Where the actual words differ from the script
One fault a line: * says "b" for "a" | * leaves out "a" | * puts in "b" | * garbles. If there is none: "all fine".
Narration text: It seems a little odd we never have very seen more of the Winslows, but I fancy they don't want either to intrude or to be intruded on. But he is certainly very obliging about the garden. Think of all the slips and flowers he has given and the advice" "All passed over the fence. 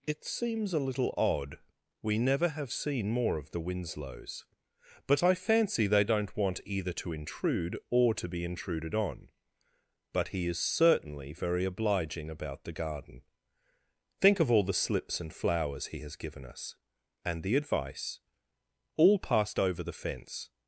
* leaves out "very"
* puts in "us"